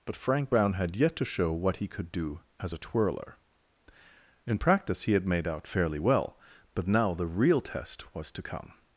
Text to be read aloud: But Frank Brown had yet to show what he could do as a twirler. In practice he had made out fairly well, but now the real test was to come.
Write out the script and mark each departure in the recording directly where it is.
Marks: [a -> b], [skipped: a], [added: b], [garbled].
But Frank Brown had yet to show what he could do as a twirler. In practice he had made out fairly well, but now the real test was to come.